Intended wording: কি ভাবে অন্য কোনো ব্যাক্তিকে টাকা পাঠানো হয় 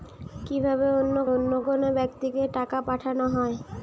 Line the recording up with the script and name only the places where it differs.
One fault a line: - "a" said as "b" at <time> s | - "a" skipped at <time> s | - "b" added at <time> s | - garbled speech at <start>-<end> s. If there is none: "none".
- "অন্য" added at 1.3 s